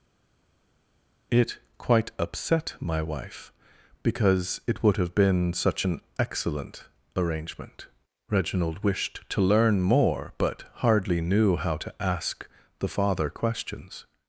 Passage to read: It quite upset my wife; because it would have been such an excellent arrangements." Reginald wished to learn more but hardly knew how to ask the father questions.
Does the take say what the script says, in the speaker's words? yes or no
no